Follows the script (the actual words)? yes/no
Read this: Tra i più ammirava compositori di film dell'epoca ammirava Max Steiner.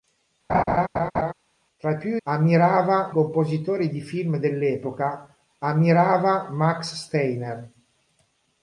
yes